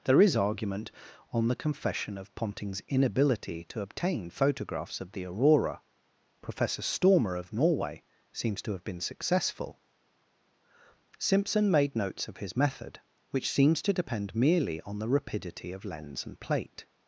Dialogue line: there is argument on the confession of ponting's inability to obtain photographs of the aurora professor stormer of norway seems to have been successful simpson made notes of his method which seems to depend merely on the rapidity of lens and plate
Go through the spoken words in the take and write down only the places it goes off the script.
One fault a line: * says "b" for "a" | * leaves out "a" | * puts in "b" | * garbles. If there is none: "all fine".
all fine